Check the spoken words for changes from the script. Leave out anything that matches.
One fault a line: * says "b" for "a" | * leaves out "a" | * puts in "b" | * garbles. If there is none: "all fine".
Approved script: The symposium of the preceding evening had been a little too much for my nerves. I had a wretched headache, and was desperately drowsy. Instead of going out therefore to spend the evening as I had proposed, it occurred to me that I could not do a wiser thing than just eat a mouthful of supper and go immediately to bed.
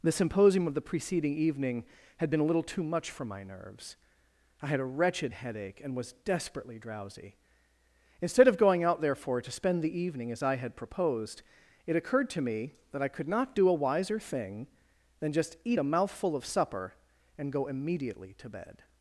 all fine